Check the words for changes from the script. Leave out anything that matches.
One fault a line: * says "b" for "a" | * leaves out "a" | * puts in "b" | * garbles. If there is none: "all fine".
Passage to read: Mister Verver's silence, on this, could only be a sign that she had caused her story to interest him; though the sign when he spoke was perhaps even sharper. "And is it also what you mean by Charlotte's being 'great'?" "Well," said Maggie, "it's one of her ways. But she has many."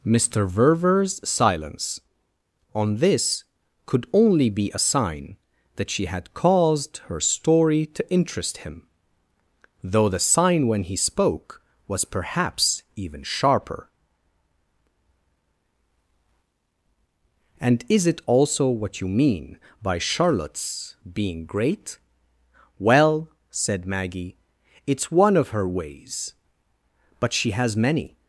all fine